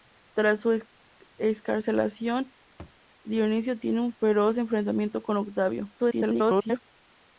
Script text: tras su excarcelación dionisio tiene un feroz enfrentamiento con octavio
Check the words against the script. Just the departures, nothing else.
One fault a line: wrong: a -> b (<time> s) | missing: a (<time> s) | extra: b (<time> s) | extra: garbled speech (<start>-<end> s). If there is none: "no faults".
extra: garbled speech (6.0-6.8 s)